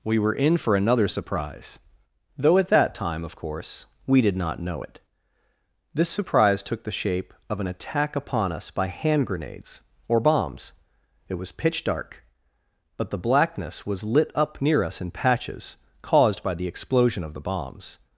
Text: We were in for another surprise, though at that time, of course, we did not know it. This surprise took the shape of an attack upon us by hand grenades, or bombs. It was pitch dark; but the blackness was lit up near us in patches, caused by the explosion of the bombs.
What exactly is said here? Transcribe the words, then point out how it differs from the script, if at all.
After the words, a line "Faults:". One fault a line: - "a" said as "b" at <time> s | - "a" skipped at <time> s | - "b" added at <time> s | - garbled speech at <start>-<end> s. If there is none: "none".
We were in for another surprise, though at that time, of course, we did not know it. This surprise took the shape of an attack upon us by hand grenades, or bombs. It was pitch dark; but the blackness was lit up near us in patches, caused by the explosion of the bombs.
Faults:
none